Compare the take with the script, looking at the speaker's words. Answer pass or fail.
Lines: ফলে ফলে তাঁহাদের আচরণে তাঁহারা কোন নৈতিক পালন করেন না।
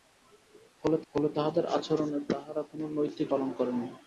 pass